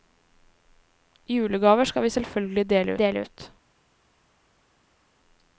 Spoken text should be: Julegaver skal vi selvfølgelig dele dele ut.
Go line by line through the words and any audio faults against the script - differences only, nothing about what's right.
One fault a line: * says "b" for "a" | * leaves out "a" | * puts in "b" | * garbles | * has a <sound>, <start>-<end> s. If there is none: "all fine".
all fine